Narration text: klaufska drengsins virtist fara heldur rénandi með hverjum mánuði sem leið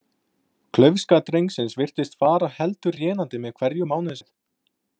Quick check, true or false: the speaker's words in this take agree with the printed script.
false